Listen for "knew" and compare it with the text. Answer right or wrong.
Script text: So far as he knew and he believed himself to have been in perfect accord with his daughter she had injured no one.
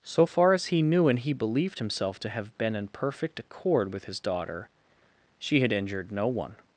right